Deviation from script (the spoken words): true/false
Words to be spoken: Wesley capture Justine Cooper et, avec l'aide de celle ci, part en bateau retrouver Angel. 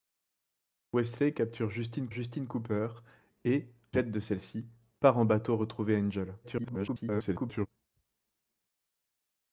true